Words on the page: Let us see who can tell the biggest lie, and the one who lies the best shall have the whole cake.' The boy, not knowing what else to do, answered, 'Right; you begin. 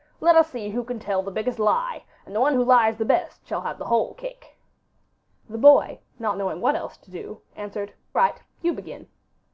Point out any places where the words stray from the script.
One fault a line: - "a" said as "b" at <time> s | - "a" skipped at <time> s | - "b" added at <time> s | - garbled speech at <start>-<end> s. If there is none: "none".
none